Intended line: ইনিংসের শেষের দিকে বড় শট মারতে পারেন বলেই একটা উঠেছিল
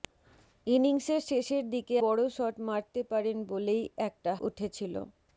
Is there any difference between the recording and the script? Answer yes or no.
no